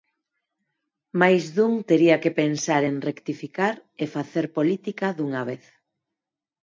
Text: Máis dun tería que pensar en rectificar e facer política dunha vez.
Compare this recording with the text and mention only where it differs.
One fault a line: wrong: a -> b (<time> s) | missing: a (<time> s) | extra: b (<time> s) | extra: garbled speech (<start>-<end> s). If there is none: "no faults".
no faults